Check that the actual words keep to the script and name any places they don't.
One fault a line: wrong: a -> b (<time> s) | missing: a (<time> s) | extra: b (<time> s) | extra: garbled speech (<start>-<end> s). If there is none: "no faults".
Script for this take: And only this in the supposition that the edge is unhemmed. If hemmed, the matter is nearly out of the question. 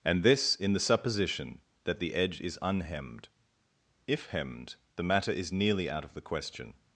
missing: only (0.2 s)